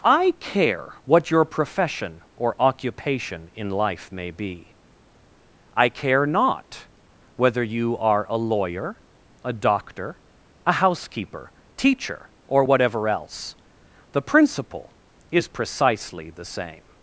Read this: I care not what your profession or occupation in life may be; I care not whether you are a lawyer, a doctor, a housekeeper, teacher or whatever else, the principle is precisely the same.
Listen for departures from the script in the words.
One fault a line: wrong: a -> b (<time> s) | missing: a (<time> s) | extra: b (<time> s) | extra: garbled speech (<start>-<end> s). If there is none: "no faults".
missing: not (0.9 s)